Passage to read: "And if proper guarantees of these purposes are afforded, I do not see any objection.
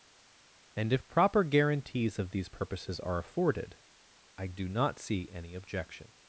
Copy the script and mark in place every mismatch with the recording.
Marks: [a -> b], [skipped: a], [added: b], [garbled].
"And if proper guarantees of these purposes are afforded, I do not see any objection.